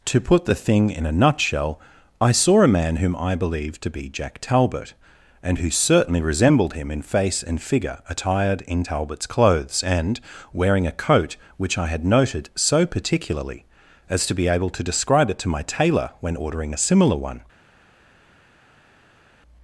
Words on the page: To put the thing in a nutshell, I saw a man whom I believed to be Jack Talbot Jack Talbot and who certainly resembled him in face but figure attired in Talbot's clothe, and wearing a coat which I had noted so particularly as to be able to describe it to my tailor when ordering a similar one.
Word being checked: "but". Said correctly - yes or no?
no